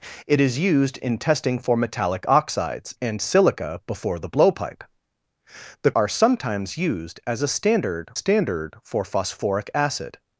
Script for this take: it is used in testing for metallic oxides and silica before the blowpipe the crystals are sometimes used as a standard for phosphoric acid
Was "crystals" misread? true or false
true